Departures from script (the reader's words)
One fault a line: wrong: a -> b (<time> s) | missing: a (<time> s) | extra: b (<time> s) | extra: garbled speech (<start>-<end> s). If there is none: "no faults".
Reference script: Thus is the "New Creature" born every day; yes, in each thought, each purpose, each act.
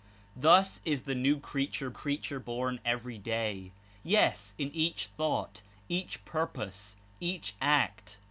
extra: Creature (1.9 s)